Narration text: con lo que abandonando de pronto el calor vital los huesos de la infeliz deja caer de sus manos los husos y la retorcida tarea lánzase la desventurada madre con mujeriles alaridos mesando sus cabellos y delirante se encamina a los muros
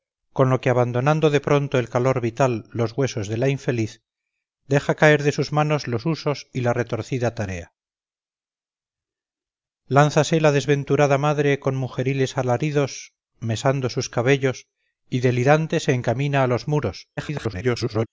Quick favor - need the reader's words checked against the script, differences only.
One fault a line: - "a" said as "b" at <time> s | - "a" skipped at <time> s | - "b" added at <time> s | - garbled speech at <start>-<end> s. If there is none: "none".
- garbled speech at 17.2-18.1 s